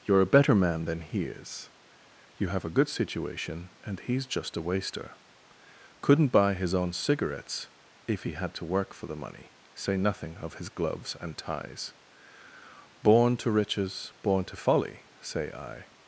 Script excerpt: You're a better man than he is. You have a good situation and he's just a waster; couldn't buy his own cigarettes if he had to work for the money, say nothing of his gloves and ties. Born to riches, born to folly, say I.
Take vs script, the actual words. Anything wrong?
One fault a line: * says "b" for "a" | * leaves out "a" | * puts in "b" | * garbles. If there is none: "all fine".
all fine